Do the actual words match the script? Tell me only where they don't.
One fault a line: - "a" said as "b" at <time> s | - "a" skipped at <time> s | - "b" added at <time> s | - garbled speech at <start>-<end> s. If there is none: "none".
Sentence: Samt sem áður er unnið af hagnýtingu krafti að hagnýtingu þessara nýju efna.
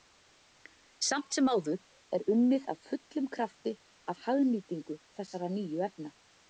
- "hagnýtingu" said as "fullum" at 2.9 s